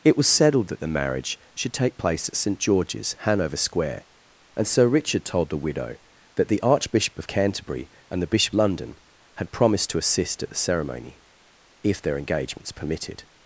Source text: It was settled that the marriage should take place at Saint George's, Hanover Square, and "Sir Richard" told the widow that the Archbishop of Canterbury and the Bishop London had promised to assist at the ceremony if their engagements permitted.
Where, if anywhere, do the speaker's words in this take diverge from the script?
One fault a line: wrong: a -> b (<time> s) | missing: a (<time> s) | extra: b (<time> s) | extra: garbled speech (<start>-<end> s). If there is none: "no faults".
no faults